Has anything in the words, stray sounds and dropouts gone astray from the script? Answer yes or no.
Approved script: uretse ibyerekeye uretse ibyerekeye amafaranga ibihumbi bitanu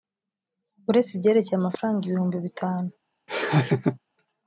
yes